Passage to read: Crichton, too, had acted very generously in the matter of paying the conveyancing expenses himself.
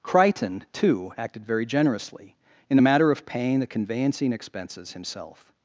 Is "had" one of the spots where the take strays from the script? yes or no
yes